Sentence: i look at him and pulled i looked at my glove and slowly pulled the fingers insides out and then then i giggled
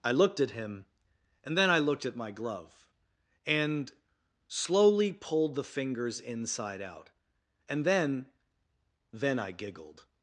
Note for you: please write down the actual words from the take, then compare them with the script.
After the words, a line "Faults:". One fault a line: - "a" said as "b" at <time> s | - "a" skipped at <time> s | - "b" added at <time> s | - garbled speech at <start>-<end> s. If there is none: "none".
i looked at him and then i looked at my glove and slowly pulled the fingers inside out and then then i giggled
Faults:
- "look" said as "looked" at 0.1 s
- "pulled" said as "then" at 1.6 s
- "insides" said as "inside" at 6.2 s